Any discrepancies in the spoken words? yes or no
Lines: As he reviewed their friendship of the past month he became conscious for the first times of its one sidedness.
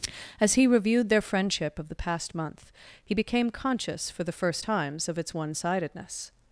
no